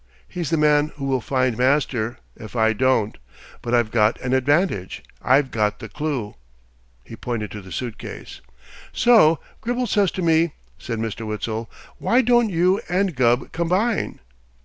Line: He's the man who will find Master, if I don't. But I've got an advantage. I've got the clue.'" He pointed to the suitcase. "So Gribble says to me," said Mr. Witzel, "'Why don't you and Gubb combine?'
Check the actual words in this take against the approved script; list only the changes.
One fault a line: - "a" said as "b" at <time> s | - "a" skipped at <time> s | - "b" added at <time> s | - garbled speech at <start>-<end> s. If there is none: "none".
none